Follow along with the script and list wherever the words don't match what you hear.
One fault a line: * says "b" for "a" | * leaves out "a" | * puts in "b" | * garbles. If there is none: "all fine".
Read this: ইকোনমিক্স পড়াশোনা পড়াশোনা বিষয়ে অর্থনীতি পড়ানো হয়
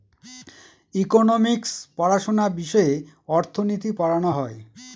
* leaves out "পড়াশোনা"